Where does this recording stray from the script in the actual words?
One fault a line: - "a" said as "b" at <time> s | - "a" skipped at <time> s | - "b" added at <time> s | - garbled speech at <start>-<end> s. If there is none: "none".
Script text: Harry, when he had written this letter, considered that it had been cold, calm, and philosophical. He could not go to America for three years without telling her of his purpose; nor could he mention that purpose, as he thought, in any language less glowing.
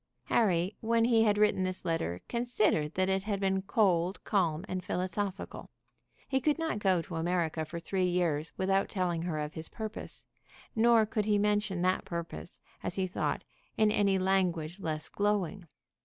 none